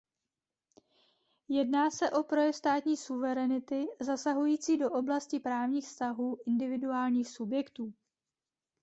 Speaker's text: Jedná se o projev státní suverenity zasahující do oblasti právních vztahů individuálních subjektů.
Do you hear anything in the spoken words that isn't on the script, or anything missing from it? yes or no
no